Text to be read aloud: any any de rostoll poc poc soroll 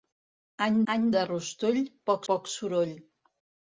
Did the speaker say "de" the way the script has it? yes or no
yes